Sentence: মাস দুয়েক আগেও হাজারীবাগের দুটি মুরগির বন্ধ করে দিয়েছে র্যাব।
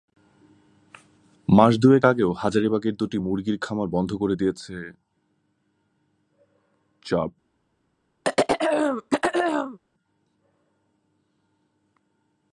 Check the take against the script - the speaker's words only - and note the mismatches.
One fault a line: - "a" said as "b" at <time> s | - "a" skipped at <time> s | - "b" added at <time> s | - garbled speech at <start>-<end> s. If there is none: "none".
- "খামার" added at 3.6 s